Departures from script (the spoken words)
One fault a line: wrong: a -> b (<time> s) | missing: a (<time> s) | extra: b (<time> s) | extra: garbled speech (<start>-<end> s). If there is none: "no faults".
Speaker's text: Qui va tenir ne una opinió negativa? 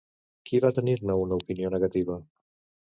no faults